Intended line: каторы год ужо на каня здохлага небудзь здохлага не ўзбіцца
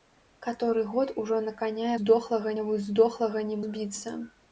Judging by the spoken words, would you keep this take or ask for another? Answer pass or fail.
pass